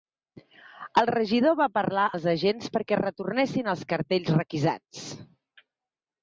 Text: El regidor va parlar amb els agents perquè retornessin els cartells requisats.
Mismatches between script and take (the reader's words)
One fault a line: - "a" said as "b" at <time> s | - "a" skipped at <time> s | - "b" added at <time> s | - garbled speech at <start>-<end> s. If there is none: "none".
- "amb" skipped at 2.0 s